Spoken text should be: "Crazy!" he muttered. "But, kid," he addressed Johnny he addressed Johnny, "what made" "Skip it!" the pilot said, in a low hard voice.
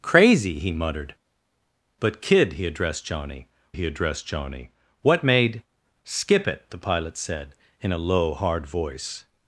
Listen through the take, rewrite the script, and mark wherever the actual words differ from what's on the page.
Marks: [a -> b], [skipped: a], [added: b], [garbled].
"Crazy!" he muttered. "But, kid," he addressed Johnny he addressed Johnny, "what made" "Skip it!" the pilot said, in a low hard voice.